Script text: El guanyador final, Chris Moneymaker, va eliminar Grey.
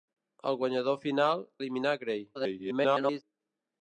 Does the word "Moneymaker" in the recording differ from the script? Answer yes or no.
yes